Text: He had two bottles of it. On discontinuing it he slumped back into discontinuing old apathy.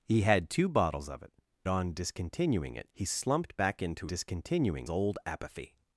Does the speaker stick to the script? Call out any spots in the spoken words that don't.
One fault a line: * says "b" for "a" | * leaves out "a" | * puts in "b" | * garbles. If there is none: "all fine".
all fine